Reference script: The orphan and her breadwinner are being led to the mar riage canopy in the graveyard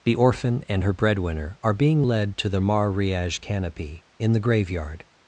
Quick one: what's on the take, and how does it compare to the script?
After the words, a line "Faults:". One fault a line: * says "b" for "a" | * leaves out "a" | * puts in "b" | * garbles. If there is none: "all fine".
The orphan and her breadwinner are being led to the mar riage canopy in the graveyard
Faults:
all fine